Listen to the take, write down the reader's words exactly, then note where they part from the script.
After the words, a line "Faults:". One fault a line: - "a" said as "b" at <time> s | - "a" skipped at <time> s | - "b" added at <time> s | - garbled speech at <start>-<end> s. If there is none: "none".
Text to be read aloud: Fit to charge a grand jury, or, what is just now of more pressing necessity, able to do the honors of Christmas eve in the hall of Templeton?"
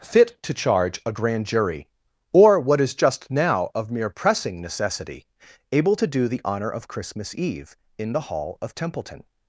Fit to charge a grand jury, or, what is just now of mere pressing necessity, able to do the honor of Christmas eve in the hall of Templeton?"
Faults:
- "more" said as "mere" at 3.9 s
- "honors" said as "honor" at 6.4 s